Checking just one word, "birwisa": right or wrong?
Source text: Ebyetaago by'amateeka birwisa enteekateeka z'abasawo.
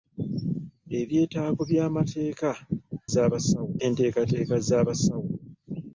wrong